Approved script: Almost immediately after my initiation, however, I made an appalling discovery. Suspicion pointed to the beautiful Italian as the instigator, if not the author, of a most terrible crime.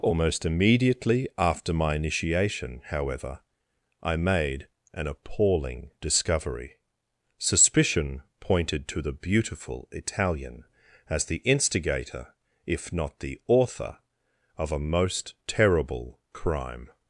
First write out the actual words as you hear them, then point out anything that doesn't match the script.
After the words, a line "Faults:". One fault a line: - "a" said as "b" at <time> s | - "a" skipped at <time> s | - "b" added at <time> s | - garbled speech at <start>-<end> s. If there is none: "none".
Almost immediately after my initiation, however, I made an appalling discovery. Suspicion pointed to the beautiful Italian as the instigator, if not the author, of a most terrible crime.
Faults:
none